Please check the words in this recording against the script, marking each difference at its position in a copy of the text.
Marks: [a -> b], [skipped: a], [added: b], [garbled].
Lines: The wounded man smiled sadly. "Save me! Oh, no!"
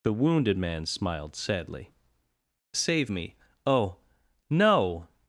The wounded man smiled sadly. "Save me! Oh, no!"